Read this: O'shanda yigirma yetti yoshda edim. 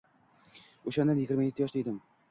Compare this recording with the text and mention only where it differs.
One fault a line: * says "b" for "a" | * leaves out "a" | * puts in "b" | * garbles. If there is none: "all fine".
all fine